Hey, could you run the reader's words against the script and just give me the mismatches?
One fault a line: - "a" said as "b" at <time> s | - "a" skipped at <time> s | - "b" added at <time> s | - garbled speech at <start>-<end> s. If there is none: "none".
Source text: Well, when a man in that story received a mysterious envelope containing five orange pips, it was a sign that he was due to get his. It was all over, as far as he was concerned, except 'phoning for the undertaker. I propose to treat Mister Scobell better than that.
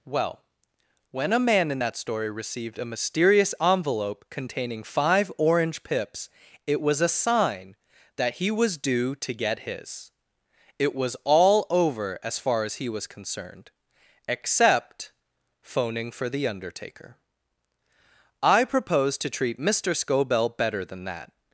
none